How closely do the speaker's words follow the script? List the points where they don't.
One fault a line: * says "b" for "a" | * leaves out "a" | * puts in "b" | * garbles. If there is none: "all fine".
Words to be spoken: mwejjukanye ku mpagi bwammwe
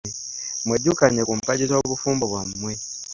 * puts in "z'obufumbo"